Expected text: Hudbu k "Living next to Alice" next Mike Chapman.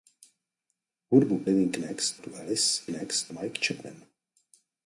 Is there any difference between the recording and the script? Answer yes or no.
no